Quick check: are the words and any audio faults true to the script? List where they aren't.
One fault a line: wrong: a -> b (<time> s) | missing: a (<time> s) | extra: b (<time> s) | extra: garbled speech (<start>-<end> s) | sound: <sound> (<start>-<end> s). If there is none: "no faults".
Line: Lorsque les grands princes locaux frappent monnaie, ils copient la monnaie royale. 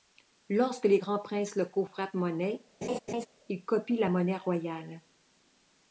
sound: laugh (2.8-3.3 s)